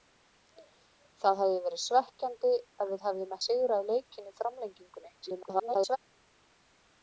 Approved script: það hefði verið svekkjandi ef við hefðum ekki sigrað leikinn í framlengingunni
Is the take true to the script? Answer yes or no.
no